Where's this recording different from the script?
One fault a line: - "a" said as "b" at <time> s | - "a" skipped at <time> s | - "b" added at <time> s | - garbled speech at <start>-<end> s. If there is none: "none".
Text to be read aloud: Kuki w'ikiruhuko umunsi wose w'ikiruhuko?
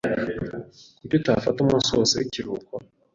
- "w'ikiruhuko" said as "utafata" at 1.2 s